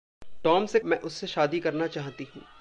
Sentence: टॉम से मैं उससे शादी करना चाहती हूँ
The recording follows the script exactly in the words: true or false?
true